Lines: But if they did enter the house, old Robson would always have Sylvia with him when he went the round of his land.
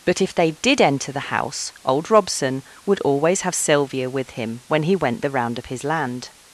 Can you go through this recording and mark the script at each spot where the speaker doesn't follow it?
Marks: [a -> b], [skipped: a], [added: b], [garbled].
But if they did enter the house, old Robson would always have Sylvia with him when he went the round of his land.